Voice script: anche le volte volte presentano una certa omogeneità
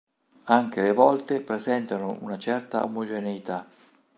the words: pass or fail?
fail